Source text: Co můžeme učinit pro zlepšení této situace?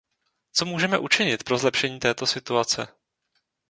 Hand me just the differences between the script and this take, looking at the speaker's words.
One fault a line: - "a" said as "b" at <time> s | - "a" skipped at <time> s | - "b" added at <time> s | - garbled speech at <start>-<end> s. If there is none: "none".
none